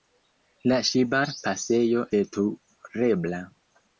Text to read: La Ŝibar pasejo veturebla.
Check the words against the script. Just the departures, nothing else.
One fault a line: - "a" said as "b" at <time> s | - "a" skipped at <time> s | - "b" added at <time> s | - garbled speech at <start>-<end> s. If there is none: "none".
none